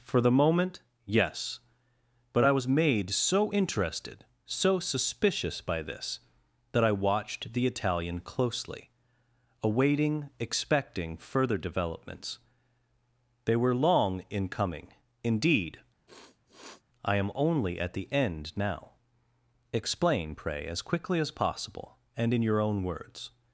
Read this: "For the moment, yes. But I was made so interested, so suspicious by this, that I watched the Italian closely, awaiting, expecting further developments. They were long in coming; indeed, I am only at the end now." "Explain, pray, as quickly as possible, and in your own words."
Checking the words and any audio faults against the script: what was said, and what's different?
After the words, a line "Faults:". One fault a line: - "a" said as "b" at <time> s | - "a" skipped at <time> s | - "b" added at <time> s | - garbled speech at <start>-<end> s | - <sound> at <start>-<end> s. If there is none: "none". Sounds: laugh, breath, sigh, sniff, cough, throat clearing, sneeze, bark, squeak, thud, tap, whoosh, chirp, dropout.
"For the moment, yes. But I was made so interested, so suspicious by this, that I watched the Italian closely, awaiting, expecting further developments. They were long in coming; indeed, I am only at the end now." "Explain, pray, as quickly as possible, and in your own words."
Faults:
- sniff at 16.1-16.8 s